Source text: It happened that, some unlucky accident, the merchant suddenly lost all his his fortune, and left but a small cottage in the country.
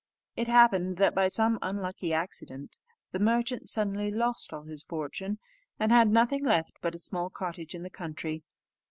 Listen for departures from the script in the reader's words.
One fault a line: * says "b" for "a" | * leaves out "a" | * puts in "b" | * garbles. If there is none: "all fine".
* puts in "by"
* leaves out "his"
* puts in "had nothing"